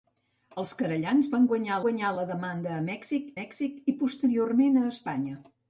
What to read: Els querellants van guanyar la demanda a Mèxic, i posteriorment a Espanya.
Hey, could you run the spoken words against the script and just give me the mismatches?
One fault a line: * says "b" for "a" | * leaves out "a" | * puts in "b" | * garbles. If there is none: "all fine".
* puts in "guanyar"
* puts in "Mèxic"